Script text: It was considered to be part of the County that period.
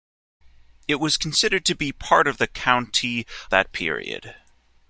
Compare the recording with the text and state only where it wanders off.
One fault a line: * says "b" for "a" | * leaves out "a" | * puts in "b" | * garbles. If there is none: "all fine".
all fine